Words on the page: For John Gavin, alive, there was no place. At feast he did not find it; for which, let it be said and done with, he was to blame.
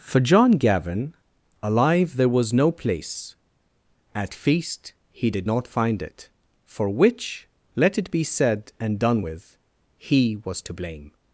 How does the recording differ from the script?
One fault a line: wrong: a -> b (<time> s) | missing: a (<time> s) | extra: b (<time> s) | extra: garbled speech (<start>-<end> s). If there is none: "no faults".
no faults